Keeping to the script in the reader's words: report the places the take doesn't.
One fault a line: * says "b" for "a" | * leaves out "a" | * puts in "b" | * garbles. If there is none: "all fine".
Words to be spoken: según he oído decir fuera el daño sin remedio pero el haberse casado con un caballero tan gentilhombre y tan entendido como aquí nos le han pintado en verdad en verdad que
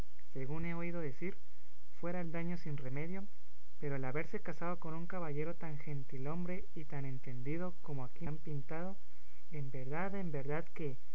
* leaves out "nos le"